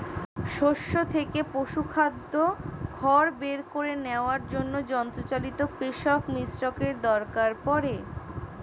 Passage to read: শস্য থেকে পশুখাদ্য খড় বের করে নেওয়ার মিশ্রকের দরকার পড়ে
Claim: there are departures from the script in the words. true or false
true